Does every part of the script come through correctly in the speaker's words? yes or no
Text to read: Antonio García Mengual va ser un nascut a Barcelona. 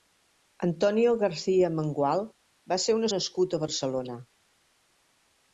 yes